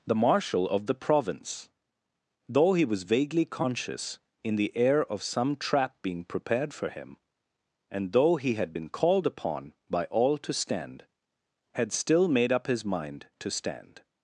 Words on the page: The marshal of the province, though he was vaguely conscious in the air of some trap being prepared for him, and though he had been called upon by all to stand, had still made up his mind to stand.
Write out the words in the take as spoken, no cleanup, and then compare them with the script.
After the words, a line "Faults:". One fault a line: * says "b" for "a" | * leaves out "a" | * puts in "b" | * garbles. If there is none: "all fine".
The marshal of the province, though he was vaguely conscious in the air of some trap being prepared for him, and though he had been called upon by all to stand, had still made up his mind to stand.
Faults:
all fine